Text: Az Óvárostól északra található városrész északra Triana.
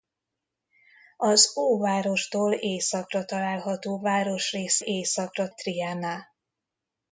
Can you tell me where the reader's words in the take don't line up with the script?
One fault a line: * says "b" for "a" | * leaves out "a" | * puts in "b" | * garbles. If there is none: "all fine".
all fine